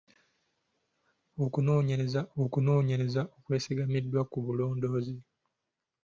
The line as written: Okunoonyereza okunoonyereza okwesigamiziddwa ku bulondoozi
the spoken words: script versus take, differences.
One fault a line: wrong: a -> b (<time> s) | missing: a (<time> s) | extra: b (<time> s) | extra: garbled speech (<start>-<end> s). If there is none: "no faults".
no faults